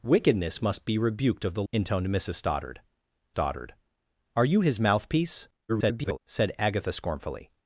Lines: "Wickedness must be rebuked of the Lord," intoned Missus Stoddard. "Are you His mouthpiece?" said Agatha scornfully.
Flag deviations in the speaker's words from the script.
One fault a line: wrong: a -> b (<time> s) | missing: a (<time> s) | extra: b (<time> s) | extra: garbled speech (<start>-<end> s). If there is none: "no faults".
missing: Lord (1.6 s)
extra: Stoddard (3.3 s)
extra: garbled speech (5.7-6.2 s)